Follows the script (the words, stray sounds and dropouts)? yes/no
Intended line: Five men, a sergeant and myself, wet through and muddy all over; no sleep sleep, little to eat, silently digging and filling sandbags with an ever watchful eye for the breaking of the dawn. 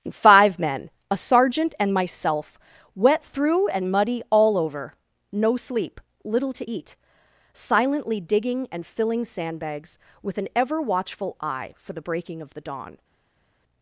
no